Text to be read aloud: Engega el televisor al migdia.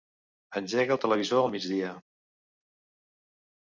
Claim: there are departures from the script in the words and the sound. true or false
false